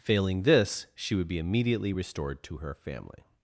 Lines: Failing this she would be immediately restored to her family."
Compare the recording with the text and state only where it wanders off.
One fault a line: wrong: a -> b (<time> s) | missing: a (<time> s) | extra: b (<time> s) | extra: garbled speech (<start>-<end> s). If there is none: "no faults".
no faults